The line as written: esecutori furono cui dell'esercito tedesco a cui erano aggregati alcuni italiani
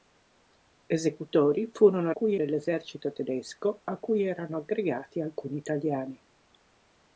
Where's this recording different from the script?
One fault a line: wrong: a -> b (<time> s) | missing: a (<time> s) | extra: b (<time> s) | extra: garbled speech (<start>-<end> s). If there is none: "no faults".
no faults